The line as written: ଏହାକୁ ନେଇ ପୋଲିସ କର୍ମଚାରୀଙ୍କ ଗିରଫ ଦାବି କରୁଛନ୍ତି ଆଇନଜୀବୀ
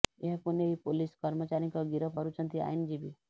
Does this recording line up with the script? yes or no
no